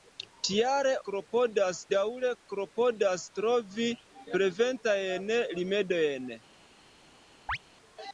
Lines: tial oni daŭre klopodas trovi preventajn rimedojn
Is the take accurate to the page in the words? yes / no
no